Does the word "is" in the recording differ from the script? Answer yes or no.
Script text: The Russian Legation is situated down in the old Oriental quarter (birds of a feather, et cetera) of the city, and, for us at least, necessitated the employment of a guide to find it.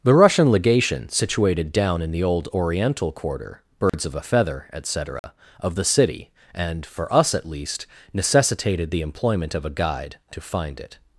yes